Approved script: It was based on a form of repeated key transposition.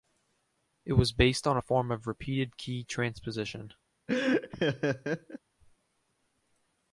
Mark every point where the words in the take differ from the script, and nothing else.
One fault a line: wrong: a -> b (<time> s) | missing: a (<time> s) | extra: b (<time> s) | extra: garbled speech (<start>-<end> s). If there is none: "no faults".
no faults